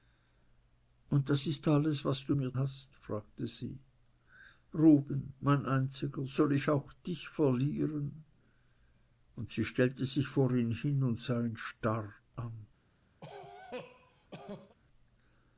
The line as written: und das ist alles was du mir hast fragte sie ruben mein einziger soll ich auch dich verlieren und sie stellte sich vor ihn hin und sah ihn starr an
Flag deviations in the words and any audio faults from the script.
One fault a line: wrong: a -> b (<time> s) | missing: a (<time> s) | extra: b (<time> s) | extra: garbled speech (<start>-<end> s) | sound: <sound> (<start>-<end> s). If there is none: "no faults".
sound: cough (13.2-14.8 s)